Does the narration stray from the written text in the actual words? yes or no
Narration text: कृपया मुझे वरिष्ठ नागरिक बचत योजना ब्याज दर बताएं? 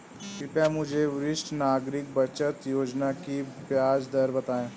yes